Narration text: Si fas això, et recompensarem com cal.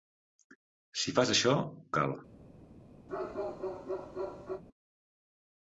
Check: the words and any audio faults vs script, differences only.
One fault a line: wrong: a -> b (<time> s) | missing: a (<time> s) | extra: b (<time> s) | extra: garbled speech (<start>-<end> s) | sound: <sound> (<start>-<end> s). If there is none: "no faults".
missing: et recompensarem com (1.6 s)
sound: bark (3.1-4.6 s)